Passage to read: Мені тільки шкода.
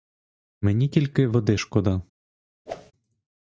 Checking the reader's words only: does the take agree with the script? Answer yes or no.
no